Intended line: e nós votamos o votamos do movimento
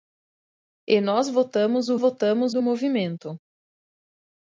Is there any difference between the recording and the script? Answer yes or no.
no